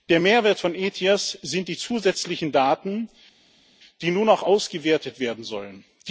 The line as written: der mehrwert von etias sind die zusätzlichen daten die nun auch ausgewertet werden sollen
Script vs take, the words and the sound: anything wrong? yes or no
no